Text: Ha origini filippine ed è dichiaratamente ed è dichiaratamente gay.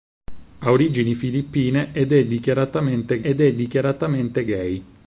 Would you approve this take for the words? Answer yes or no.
yes